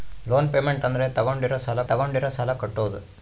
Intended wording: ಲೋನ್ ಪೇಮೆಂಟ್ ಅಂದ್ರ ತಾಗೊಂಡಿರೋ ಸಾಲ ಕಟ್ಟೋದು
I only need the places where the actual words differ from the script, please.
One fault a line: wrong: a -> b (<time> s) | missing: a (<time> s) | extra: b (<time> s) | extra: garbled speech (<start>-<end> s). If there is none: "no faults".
extra: ತಾಗೊಂಡಿರೋ ಸಾಲ (1.8 s)